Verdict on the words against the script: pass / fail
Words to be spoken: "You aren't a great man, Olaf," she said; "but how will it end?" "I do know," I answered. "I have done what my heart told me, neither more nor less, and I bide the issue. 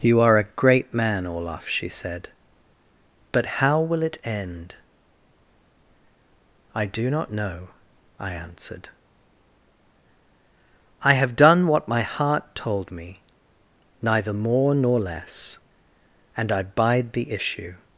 fail